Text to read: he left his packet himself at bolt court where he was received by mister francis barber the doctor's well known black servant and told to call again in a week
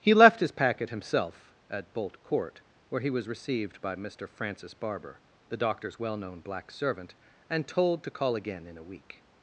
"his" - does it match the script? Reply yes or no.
yes